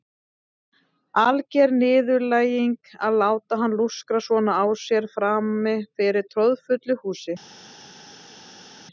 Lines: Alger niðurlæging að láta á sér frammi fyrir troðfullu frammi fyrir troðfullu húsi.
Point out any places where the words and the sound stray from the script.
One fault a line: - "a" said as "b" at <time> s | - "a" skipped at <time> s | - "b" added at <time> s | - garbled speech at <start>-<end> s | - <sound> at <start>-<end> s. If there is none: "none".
- "á sér frammi fyrir troðfullu" said as "hann lúskra svona á sér" at 3.6 s